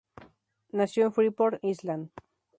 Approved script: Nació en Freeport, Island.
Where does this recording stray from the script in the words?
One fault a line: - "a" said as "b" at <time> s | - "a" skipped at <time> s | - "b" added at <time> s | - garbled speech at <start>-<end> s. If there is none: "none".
none